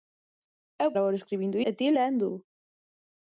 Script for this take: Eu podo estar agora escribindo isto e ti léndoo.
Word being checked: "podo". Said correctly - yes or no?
no